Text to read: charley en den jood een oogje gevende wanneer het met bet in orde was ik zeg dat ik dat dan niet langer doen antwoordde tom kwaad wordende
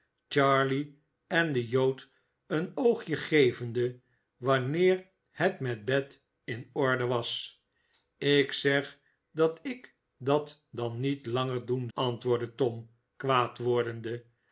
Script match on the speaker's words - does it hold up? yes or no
yes